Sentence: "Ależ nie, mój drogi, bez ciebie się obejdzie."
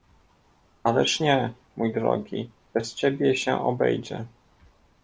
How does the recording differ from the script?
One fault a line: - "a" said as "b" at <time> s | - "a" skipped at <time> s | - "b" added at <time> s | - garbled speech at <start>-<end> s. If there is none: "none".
none